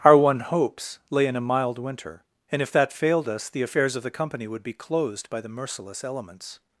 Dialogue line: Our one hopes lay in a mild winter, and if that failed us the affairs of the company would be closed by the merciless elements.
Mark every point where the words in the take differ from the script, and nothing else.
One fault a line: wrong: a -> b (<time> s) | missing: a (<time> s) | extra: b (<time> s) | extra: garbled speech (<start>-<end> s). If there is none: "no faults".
no faults